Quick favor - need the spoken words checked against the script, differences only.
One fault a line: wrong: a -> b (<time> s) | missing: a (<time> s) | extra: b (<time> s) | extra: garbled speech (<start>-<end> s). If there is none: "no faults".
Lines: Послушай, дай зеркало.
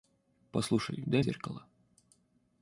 no faults